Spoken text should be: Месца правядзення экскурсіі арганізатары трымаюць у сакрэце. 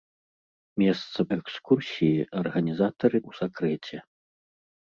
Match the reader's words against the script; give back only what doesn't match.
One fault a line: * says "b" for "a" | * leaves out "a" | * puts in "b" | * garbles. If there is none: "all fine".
* leaves out "правядзення"
* leaves out "трымаюць"